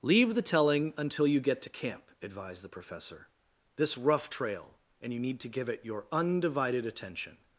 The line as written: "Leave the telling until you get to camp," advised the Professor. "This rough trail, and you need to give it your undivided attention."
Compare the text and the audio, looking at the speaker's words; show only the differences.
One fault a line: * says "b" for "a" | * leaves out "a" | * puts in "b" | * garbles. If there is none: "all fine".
all fine